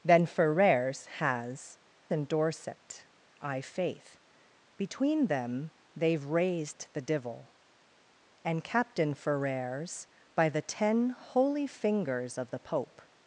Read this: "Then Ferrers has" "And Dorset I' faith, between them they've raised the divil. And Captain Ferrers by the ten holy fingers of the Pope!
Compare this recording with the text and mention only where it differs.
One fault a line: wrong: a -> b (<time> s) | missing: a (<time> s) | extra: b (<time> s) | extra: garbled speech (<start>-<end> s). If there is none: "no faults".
no faults